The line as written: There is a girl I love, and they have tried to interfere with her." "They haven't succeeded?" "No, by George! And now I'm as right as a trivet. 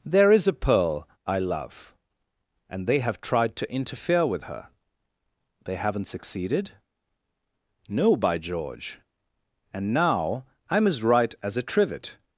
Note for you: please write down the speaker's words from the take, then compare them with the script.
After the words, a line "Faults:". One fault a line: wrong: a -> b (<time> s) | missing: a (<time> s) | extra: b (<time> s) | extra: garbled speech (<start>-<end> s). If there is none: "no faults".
There is a pearl I love, and they have tried to interfere with her." "They haven't succeeded?" "No, by George! And now I'm as right as a trivet.
Faults:
wrong: girl -> pearl (0.5 s)